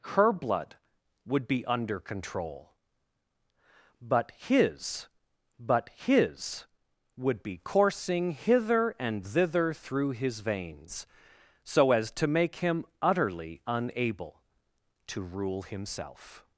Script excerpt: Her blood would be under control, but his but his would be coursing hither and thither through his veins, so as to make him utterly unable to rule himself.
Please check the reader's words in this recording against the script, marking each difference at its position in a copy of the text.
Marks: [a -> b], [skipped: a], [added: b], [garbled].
Her blood would be under control, but his but his would be coursing hither and thither through his veins, so as to make him utterly unable to rule himself.